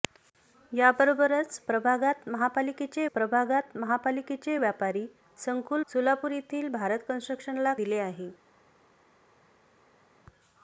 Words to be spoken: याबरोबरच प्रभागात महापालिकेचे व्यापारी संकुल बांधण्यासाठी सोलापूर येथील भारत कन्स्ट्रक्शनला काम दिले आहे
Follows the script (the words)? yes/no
no